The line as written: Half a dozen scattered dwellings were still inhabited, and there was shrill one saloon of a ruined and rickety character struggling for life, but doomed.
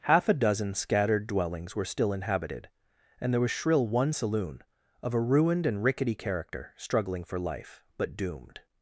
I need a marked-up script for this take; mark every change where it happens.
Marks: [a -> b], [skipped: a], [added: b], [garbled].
Half a dozen scattered dwellings were still inhabited, and there was shrill one saloon of a ruined and rickety character struggling for life, but doomed.